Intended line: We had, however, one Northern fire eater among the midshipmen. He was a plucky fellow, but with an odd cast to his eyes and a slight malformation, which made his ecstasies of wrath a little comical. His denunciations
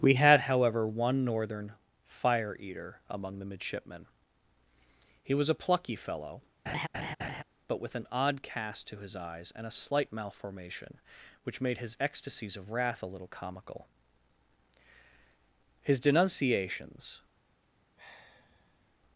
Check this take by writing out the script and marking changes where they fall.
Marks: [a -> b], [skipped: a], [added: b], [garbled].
We had, however, one Northern fire eater among the midshipmen. He was a plucky fellow, but with an odd cast to his eyes and a slight malformation, which made his ecstasies of wrath a little comical. His denunciations